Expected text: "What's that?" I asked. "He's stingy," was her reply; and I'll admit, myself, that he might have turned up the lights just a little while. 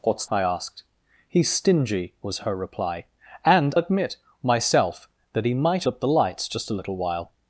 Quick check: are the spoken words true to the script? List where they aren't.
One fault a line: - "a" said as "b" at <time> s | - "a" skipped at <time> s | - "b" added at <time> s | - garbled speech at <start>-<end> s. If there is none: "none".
- "that" skipped at 0.2 s
- "I'll" skipped at 3.8 s
- "have turned" skipped at 5.8 s